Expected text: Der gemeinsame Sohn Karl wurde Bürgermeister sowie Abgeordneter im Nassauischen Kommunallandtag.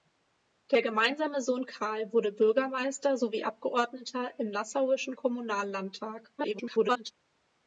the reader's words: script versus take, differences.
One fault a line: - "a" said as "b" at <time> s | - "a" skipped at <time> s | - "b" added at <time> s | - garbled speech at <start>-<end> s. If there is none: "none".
- garbled speech at 6.4-7.1 s